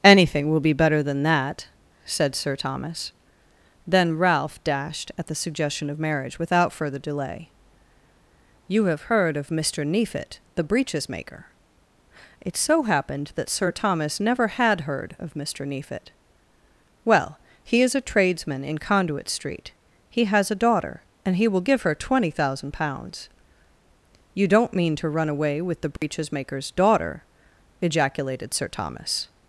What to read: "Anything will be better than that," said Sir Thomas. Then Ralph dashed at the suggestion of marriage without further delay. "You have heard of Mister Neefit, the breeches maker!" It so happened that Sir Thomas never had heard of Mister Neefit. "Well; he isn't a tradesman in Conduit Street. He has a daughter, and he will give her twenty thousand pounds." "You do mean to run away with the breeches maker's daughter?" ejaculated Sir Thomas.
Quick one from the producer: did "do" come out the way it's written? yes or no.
no